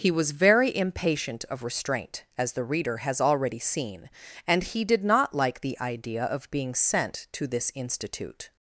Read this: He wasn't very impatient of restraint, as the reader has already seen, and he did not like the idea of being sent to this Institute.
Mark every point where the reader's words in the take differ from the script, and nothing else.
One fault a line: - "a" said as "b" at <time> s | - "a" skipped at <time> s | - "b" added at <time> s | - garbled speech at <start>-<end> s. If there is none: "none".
- "wasn't" said as "was" at 0.1 s